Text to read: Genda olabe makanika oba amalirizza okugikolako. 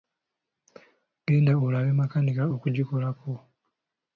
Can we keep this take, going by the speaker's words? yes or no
no